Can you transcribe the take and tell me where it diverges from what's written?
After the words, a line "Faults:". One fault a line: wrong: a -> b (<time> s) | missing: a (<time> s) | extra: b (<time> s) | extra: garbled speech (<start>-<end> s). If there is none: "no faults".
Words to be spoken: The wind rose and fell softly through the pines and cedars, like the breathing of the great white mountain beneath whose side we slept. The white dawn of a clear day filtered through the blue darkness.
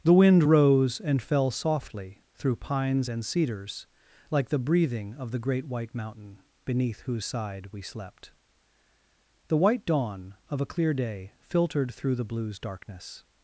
The wind rose and fell softly through pines and cedars, like the breathing of the great white mountain beneath whose side we slept. The white dawn of a clear day filtered through the blues darkness.
Faults:
missing: the (2.6 s)
wrong: blue -> blues (12.2 s)